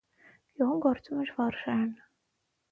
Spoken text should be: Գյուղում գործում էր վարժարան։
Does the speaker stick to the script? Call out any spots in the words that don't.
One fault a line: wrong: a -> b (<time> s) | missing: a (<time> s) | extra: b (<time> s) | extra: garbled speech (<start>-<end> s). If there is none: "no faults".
no faults